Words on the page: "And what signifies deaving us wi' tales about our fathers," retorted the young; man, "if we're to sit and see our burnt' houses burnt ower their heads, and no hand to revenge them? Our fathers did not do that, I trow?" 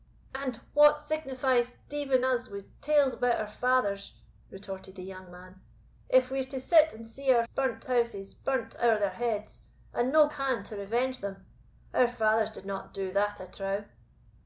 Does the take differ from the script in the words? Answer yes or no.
no